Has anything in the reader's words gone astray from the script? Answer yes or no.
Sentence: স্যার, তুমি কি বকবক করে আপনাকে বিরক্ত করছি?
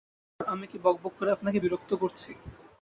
yes